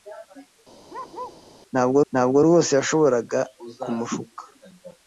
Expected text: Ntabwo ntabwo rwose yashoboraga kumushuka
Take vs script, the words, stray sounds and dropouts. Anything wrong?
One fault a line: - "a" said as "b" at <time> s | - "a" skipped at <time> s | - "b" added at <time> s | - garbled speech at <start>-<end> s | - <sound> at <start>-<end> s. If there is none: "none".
- bark at 0.9-1.4 s